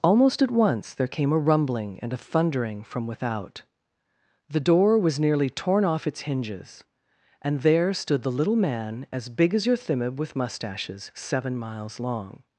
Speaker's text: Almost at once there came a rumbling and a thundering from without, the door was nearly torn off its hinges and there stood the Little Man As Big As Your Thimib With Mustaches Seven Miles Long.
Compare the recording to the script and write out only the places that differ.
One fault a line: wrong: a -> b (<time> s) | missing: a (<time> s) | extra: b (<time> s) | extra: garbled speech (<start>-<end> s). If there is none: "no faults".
no faults